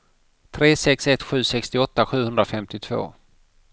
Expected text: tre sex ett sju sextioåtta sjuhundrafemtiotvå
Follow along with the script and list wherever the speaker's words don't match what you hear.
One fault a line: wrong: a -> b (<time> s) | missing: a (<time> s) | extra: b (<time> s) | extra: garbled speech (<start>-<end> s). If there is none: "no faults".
no faults